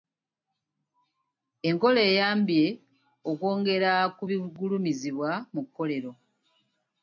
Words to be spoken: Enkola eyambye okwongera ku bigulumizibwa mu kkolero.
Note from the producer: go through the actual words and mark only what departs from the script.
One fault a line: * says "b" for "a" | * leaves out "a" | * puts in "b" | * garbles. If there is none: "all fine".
all fine